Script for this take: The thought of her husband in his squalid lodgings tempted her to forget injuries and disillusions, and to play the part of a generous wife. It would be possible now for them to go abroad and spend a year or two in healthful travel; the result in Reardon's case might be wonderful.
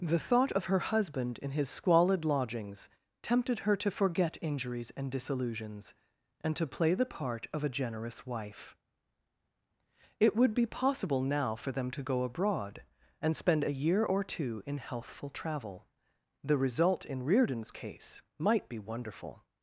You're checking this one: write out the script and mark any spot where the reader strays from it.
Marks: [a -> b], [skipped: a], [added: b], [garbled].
The thought of her husband in his squalid lodgings tempted her to forget injuries and disillusions, and to play the part of a generous wife. It would be possible now for them to go abroad and spend a year or two in healthful travel; the result in Reardon's case might be wonderful.